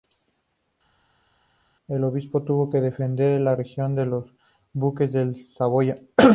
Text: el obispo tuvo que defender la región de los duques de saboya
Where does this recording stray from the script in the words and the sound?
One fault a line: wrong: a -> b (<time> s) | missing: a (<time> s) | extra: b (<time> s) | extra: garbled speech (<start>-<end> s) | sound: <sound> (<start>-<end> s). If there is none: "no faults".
no faults